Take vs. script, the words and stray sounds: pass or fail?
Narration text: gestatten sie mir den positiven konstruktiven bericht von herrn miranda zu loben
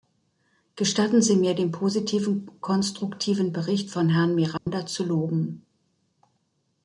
fail